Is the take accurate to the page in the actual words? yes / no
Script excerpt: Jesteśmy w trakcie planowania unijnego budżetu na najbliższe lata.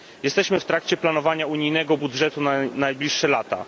yes